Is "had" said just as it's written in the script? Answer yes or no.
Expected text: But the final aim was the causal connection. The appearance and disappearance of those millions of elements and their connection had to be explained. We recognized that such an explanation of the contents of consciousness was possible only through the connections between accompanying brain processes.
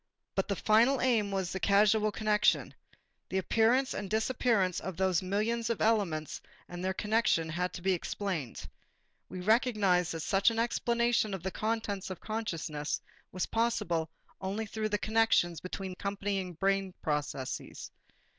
yes